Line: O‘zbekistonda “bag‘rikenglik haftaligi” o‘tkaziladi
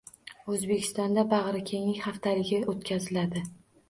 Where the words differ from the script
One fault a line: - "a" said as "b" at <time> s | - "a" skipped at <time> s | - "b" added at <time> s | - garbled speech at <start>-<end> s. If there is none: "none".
none